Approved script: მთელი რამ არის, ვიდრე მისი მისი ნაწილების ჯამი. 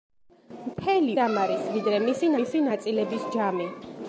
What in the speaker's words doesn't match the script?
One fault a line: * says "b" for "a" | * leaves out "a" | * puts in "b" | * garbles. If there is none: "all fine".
all fine